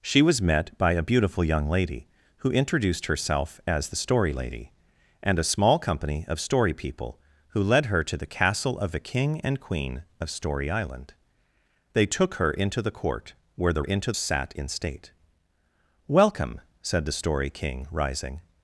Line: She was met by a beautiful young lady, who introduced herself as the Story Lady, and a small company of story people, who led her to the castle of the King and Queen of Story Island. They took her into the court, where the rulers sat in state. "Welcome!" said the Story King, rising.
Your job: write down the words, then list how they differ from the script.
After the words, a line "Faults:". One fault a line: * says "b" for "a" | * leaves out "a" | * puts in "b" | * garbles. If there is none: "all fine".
She was met by a beautiful young lady, who introduced herself as the Story Lady, and a small company of story people, who led her to the castle of the King and Queen of Story Island. They took her into the court, where the into sat in state. "Welcome!" said the Story King, rising.
Faults:
* says "into" for "rulers"